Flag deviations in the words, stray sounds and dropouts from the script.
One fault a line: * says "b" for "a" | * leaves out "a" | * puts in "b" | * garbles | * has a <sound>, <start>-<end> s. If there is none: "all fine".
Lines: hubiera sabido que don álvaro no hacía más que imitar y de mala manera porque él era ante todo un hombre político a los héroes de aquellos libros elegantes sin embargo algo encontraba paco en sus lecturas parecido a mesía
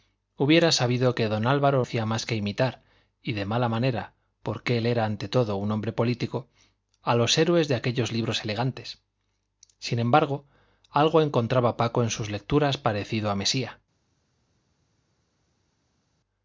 * leaves out "no"